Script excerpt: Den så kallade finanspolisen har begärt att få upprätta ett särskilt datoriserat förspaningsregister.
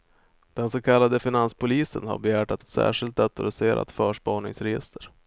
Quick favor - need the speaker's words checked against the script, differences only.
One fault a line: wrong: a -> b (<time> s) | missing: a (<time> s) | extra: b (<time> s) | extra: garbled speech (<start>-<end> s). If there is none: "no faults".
missing: få upprätta (2.6 s)